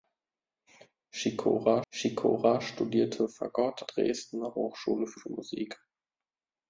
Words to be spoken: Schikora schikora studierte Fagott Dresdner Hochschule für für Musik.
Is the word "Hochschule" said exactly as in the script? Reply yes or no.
yes